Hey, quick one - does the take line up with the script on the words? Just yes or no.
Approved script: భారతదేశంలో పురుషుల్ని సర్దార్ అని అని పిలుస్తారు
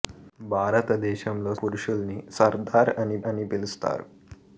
yes